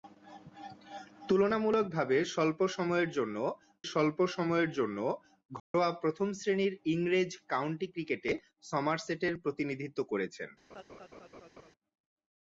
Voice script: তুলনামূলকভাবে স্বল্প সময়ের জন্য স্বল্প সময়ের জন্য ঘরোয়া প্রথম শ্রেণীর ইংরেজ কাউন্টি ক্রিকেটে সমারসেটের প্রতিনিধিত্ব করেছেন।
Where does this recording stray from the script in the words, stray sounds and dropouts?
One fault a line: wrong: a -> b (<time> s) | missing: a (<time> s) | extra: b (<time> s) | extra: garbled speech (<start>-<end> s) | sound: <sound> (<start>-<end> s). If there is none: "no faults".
sound: dropout (5.6-5.7 s)
sound: laugh (10.7-11.7 s)